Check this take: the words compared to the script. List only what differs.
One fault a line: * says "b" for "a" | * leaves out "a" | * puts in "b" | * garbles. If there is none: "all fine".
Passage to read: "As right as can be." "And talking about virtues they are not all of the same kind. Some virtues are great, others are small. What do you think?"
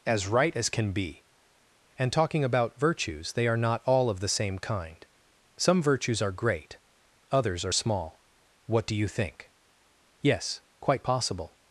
* puts in "Yes quite possible"